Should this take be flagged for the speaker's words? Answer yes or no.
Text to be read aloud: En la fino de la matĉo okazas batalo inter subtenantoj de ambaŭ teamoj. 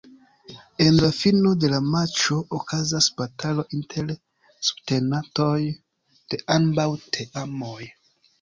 no